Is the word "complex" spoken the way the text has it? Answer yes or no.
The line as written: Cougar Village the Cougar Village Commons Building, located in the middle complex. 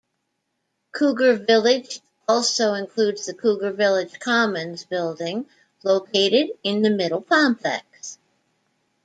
yes